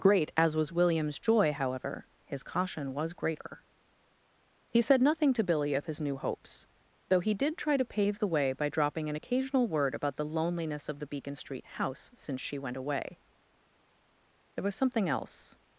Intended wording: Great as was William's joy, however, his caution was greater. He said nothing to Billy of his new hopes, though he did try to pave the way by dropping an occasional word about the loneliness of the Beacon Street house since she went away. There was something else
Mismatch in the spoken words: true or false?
false